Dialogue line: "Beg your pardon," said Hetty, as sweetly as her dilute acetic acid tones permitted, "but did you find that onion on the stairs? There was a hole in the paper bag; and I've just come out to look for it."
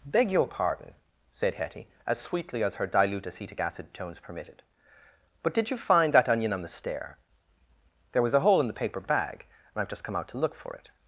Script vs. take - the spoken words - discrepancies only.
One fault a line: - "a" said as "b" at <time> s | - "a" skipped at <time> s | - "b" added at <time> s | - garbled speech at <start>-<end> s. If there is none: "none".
- "stairs" said as "stair" at 6.7 s